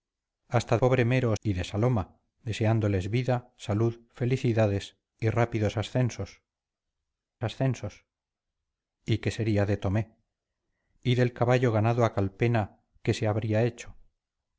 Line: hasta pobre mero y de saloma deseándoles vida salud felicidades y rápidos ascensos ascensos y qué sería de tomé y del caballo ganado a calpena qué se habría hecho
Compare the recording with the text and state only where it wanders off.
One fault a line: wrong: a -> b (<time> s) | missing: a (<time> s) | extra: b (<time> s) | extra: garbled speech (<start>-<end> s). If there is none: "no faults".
no faults